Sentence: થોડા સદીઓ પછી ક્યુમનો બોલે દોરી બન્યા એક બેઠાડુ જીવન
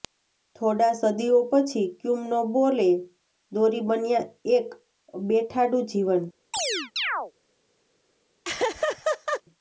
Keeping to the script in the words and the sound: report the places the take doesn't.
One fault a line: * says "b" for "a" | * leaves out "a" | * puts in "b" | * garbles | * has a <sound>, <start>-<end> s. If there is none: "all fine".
* has a chirp, 6.5-7.3 s
* has a laugh, 8.4-9.4 s